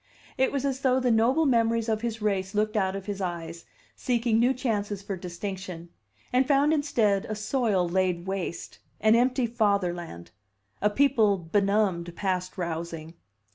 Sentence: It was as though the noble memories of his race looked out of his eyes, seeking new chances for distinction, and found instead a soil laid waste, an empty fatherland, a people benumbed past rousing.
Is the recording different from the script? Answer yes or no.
no